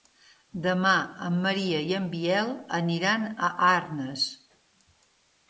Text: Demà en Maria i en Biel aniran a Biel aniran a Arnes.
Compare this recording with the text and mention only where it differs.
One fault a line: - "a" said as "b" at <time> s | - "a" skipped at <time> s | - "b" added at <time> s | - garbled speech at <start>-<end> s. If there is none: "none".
- "Biel aniran a" skipped at 3.5 s